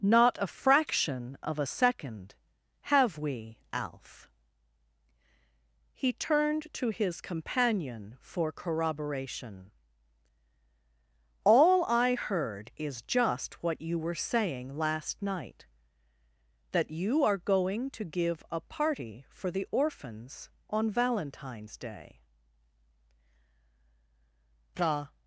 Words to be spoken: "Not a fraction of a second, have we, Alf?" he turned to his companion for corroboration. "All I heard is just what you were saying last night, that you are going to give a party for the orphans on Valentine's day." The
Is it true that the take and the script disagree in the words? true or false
false